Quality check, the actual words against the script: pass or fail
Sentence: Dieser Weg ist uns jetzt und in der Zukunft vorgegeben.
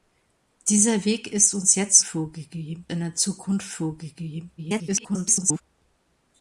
fail